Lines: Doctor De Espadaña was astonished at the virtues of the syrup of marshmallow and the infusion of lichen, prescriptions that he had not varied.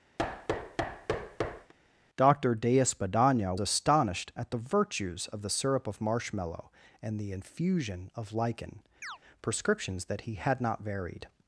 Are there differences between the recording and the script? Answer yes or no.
yes